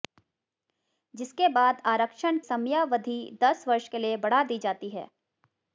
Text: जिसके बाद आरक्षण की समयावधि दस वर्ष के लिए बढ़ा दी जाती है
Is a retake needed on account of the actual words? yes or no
yes